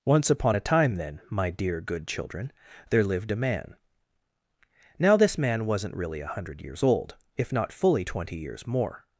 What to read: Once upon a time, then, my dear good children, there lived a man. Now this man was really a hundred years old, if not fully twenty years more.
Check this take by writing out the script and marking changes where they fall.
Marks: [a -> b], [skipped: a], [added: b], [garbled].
Once upon a time, then, my dear good children, there lived a man. Now this man [was -> wasn't] really a hundred years old, if not fully twenty years more.